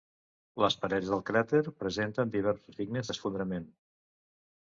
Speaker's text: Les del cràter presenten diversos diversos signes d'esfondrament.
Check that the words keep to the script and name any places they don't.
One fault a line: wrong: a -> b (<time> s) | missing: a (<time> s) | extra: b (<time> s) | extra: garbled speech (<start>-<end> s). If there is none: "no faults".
extra: parets (0.8 s)
missing: diversos (2.8 s)